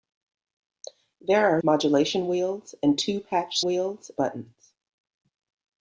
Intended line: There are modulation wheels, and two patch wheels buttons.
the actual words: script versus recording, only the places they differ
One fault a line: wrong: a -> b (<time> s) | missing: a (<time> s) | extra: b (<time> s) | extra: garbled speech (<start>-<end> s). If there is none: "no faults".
no faults